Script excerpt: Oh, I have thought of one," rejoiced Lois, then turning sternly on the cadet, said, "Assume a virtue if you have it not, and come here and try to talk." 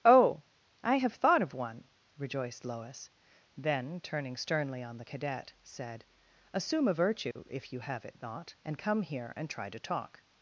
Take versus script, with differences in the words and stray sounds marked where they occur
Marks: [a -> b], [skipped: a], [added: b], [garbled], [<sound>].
Oh, I have thought of one," rejoiced Lois, then turning sternly on the cadet, said, "Assume a virtue [dropout] if you have it not, and come here and try to talk."